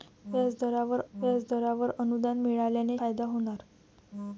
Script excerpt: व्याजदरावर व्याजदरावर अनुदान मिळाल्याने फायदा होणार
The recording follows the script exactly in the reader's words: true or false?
true